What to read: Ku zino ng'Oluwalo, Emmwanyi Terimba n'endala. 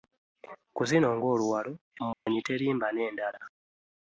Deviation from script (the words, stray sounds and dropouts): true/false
true